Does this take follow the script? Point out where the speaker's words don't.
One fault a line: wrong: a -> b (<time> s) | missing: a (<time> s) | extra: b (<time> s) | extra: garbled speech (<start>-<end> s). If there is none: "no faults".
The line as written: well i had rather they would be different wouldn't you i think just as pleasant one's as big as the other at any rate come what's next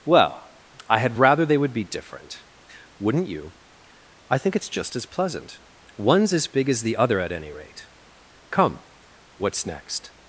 extra: it's (4.6 s)